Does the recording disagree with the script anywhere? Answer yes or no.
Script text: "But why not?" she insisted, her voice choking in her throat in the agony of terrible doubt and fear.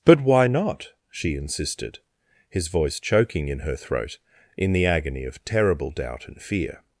yes